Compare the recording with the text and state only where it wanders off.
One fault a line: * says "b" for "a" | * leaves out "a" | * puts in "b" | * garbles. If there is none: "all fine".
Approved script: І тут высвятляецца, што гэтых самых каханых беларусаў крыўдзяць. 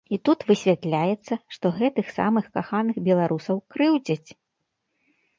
all fine